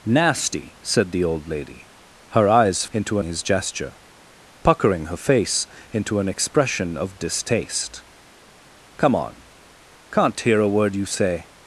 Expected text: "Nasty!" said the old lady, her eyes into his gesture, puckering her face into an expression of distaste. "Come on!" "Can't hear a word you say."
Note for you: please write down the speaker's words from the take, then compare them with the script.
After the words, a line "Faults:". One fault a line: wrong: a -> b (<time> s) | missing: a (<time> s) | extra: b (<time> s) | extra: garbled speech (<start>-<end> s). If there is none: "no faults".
"Nasty!" said the old lady, her eyes into his gesture, puckering her face into an expression of distaste. "Come on!" "Can't hear a word you say."
Faults:
no faults